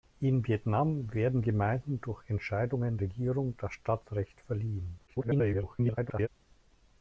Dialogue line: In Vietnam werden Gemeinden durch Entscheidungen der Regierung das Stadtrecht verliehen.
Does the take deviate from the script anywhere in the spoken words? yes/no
yes